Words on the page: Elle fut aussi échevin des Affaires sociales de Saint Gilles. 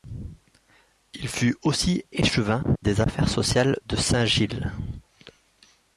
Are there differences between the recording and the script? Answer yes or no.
yes